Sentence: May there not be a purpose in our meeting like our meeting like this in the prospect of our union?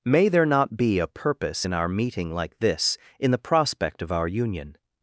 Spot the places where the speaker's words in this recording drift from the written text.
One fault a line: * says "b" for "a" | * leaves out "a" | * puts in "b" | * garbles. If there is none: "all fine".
* leaves out "our meeting like"